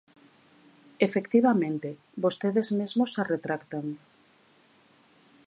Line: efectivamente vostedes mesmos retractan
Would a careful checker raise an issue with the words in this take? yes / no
yes